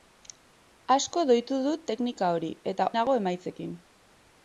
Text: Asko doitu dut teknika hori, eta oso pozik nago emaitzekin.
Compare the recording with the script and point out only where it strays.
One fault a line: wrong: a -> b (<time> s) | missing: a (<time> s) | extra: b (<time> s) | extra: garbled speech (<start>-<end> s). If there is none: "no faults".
missing: oso pozik (2.9 s)